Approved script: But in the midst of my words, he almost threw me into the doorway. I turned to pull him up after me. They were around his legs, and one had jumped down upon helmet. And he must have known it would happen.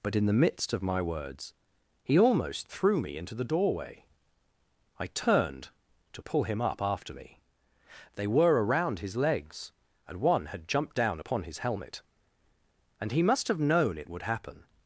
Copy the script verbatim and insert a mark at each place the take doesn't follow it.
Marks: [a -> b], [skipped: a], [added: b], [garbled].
But in the midst of my words, he almost threw me into the doorway. I turned to pull him up after me. They were around his legs, and one had jumped down upon [added: his] helmet. And he must have known it would happen.